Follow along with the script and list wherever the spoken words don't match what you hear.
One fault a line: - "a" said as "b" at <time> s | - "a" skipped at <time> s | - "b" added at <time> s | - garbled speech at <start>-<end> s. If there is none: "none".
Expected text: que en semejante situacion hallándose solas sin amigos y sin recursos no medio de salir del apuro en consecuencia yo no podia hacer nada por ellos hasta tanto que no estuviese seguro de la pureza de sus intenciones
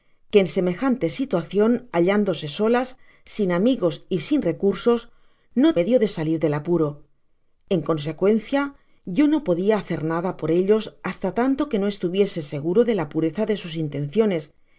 none